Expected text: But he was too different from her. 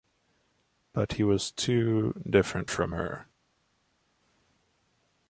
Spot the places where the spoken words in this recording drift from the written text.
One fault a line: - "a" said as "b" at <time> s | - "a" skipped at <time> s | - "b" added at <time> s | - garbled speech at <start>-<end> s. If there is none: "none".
none